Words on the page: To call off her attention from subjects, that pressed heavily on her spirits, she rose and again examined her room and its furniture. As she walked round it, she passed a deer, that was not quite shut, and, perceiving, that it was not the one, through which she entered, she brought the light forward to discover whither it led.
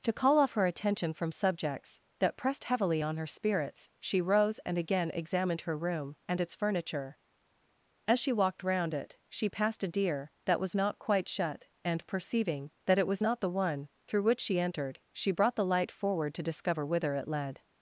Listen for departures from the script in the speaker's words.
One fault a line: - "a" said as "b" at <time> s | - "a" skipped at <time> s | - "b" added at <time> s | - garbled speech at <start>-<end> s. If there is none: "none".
none